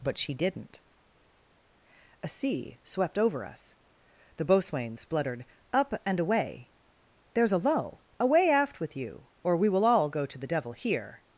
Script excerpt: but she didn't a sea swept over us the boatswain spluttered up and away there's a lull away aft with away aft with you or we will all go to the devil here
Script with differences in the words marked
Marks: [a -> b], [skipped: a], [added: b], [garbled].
but she didn't a sea swept over us the boatswain spluttered up and away there's a lull away aft with [skipped: away aft with] you or we will all go to the devil here